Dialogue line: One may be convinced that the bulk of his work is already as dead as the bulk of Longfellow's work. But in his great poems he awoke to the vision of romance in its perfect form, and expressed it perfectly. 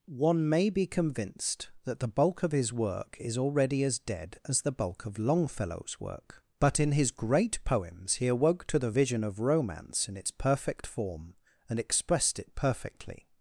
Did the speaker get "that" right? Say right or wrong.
right